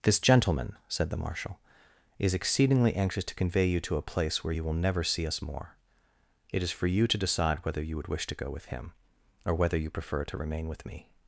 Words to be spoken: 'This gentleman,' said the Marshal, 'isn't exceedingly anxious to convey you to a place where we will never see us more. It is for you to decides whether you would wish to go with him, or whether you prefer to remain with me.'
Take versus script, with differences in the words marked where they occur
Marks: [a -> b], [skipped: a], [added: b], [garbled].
'This gentleman,' said the Marshal, ['isn't -> is] exceedingly anxious to convey you to a place where [we -> you] will never see us more. It is for you to [decides -> decide] whether you would wish to go with him, or whether you prefer to remain with me.'